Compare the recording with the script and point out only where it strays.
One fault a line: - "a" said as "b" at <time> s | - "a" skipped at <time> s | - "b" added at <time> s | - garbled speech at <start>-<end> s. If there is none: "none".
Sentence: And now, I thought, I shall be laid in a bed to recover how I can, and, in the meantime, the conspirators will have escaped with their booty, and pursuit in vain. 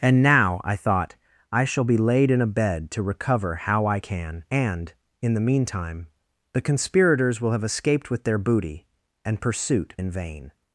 none